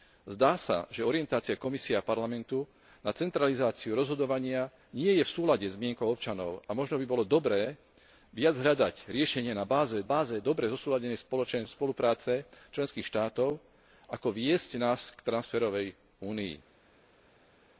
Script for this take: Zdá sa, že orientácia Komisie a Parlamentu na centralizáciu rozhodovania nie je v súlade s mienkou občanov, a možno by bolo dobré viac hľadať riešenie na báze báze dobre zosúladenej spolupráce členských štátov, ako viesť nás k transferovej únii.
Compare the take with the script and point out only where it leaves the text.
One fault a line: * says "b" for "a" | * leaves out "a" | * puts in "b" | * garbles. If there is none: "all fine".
all fine